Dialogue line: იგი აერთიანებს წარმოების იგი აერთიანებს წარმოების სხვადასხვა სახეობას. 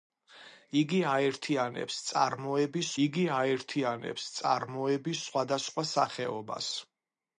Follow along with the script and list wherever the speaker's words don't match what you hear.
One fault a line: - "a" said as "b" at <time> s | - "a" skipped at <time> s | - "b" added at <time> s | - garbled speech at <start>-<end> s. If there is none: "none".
none